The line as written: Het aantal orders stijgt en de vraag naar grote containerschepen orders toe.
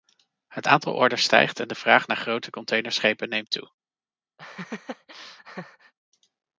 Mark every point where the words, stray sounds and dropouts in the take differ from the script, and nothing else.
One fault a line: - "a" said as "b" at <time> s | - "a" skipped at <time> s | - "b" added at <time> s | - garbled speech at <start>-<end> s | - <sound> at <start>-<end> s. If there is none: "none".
- "orders" said as "neemt" at 3.3 s
- laugh at 4.4-5.9 s